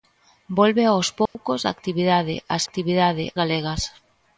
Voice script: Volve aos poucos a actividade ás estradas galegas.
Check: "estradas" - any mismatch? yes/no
yes